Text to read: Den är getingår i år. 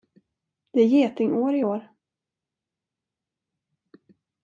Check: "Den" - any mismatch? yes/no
yes